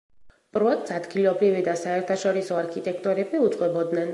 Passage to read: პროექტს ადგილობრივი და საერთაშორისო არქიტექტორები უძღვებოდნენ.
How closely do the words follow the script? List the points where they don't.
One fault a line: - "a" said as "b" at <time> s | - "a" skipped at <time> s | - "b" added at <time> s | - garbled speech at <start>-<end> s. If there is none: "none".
none